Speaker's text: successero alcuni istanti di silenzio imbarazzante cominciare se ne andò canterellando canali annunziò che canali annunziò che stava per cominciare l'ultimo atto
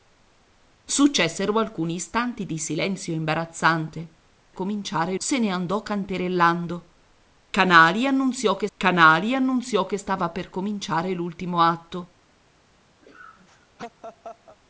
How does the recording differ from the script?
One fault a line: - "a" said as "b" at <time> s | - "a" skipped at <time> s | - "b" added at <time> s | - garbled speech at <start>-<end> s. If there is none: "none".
none